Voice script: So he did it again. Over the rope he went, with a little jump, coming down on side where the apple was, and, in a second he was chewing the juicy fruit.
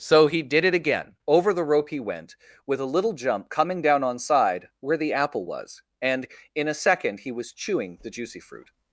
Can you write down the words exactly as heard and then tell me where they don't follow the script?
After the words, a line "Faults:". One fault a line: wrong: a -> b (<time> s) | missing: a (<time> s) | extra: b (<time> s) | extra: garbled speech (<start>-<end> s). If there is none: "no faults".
So he did it again. Over the rope he went, with a little jump, coming down on side where the apple was, and, in a second he was chewing the juicy fruit.
Faults:
no faults